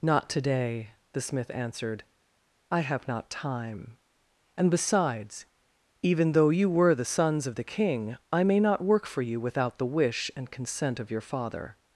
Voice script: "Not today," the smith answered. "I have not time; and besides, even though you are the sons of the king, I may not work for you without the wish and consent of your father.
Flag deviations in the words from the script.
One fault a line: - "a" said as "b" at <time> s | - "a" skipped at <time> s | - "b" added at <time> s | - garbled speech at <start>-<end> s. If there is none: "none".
- "are" said as "were" at 6.7 s